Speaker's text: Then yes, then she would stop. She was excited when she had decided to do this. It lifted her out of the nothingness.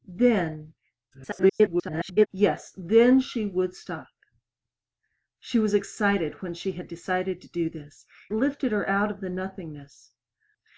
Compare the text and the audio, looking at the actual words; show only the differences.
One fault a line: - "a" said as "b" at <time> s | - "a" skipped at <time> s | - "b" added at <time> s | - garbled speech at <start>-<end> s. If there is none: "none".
- garbled speech at 1.1-2.3 s
- "It" skipped at 8.0 s